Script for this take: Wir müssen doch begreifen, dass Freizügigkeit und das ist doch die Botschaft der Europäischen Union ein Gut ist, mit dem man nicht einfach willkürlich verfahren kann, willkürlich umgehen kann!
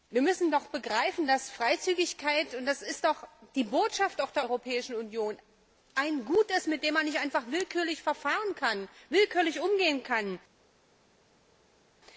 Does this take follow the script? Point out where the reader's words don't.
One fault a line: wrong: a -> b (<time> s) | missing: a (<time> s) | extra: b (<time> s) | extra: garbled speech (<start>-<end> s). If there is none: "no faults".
no faults